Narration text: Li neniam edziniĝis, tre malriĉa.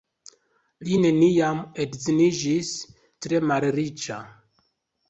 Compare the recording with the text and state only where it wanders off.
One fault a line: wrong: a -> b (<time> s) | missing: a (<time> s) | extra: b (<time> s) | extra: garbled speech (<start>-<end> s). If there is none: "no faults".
no faults